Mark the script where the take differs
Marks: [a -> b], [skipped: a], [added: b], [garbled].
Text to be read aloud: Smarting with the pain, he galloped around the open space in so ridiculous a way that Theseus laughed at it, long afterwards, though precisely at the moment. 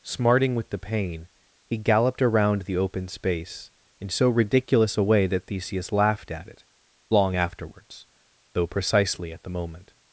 Smarting with the pain, he galloped around the open space in so ridiculous a way that Theseus laughed at it, long afterwards, though precisely at the moment.